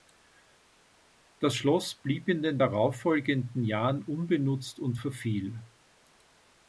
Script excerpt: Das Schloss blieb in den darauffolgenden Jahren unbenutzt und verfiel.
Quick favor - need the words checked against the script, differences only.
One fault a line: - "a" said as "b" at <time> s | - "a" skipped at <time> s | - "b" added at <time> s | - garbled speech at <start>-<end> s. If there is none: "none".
none